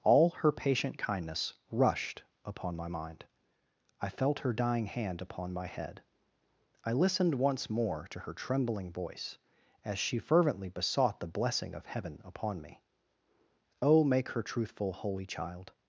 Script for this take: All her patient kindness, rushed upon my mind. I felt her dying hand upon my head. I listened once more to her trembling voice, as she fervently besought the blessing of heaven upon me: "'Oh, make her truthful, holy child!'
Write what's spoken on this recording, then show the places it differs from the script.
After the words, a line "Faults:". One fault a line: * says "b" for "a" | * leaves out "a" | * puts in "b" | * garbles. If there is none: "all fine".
All her patient kindness, rushed upon my mind. I felt her dying hand upon my head. I listened once more to her trembling voice, as she fervently besought the blessing of heaven upon me: "'Oh, make her truthful, holy child!'
Faults:
all fine